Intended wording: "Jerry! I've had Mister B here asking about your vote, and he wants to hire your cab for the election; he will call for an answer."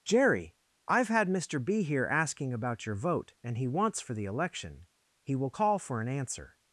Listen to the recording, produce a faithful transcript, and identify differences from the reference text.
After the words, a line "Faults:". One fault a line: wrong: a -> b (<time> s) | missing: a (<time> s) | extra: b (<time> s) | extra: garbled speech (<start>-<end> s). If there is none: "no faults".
"Jerry! I've had Mister B here asking about your vote, and he wants for the election; he will call for an answer."
Faults:
missing: to hire your cab (4.0 s)